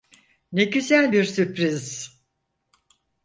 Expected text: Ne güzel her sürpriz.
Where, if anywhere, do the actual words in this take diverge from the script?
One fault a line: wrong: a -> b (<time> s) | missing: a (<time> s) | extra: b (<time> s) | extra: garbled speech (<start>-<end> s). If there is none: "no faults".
wrong: her -> bir (1.1 s)